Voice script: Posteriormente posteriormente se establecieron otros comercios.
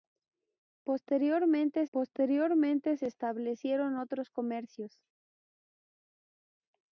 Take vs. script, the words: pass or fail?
pass